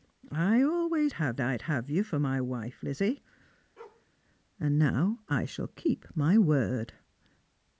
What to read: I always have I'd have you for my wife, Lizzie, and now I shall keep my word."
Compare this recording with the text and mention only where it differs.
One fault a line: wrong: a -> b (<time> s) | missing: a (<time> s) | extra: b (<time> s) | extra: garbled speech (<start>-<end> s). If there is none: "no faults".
no faults